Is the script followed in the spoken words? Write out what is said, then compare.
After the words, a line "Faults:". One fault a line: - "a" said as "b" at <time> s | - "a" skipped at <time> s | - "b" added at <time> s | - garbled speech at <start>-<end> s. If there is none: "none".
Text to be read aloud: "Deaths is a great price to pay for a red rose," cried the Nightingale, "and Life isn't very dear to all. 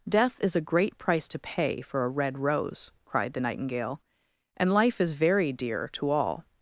"Death is a great price to pay for a red rose," cried the Nightingale, "and Life is very dear to all.
Faults:
- "Deaths" said as "Death" at 0.1 s
- "isn't" said as "is" at 5.0 s